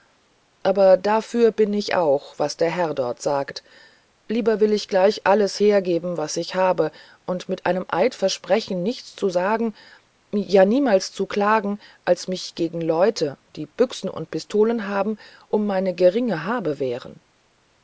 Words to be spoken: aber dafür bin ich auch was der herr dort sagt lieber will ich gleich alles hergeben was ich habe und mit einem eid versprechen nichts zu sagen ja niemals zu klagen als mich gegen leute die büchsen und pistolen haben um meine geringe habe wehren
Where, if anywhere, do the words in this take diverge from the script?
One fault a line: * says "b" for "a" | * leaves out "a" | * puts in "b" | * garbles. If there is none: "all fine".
all fine